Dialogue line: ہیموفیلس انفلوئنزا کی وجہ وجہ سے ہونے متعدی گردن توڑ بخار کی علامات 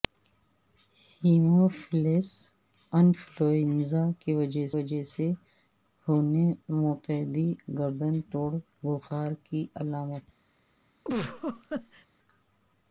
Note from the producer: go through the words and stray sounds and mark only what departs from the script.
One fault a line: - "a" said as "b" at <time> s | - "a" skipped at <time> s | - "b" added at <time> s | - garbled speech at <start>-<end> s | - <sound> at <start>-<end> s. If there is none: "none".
- laugh at 11.0-12.1 s